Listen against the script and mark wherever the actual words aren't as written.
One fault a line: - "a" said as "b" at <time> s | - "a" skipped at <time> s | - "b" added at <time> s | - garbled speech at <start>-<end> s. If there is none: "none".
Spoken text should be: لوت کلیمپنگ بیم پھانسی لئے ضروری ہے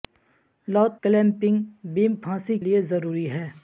none